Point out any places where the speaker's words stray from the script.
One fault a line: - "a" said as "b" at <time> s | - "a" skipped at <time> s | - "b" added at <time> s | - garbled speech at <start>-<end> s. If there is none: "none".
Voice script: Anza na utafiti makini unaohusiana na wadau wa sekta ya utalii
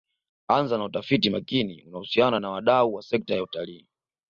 none